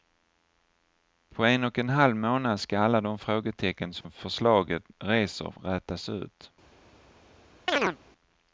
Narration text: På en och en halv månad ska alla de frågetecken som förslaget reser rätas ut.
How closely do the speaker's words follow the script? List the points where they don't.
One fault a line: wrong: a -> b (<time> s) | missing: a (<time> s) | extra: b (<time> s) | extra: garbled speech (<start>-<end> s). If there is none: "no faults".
no faults